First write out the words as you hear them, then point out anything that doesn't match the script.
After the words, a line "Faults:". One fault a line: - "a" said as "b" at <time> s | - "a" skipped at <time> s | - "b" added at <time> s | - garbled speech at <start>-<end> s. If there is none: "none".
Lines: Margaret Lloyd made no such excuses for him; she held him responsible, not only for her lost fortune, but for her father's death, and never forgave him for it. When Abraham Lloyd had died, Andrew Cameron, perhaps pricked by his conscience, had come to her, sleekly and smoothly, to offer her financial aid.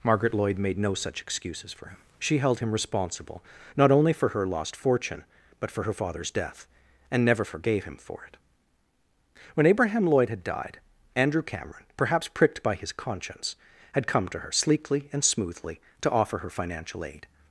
Margaret Lloyd made no such excuses for him; she held him responsible, not only for her lost fortune, but for her father's death, and never forgave him for it. When Abraham Lloyd had died, Andrew Cameron, perhaps pricked by his conscience, had come to her, sleekly and smoothly, to offer her financial aid.
Faults:
none